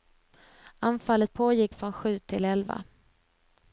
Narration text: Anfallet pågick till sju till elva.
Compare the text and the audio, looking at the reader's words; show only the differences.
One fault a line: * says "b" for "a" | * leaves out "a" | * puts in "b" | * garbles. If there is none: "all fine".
* says "från" for "till"